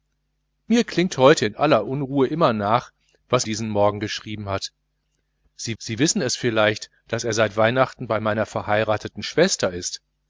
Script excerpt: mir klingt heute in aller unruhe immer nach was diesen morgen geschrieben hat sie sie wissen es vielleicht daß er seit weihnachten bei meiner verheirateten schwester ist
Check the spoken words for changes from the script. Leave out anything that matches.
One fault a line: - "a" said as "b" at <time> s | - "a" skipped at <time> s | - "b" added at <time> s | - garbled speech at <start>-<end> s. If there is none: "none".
none